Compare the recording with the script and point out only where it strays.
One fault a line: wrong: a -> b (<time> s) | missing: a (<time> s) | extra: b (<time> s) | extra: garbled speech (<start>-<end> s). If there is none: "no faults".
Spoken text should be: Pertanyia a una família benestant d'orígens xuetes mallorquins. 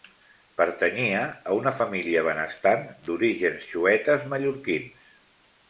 no faults